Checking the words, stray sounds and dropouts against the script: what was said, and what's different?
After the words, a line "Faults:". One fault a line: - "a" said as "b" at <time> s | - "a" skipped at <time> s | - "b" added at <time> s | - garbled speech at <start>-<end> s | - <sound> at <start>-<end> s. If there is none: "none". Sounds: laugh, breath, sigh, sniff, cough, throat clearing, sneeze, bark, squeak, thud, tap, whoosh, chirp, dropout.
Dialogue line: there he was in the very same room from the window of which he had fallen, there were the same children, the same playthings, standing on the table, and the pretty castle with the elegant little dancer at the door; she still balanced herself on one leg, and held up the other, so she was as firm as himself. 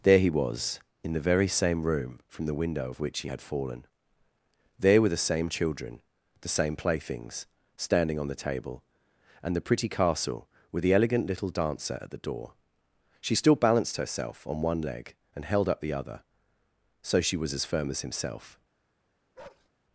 there he was in the very same room from the window of which he had fallen, there were the same children, the same playthings, standing on the table, and the pretty castle with the elegant little dancer at the door; she still balanced herself on one leg, and held up the other, so she was as firm as himself.
Faults:
- bark at 19.4-19.7 s